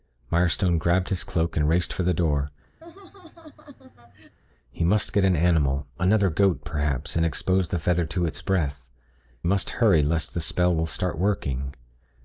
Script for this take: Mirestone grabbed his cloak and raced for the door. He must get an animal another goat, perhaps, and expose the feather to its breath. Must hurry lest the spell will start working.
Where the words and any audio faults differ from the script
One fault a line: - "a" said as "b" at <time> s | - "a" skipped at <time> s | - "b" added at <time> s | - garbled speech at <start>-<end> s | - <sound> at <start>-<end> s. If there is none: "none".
- laugh at 2.8-4.4 s